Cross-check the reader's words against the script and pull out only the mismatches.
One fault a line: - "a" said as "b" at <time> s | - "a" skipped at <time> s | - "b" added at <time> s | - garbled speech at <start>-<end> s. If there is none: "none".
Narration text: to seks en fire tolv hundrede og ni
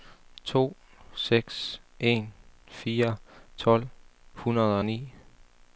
none